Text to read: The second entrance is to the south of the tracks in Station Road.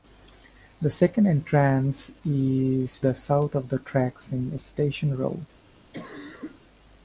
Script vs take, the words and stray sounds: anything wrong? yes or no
yes